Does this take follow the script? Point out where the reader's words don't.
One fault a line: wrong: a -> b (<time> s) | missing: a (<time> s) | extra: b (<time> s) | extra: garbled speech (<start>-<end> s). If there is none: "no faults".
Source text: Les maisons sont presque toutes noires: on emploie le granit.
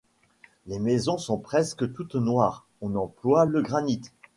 no faults